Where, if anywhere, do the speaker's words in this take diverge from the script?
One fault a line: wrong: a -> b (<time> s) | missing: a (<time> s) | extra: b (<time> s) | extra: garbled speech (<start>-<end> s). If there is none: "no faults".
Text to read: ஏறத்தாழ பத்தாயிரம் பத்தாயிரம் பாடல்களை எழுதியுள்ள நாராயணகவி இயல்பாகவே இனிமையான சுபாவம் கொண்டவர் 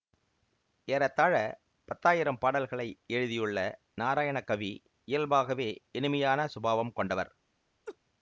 missing: பத்தாயிரம் (2.4 s)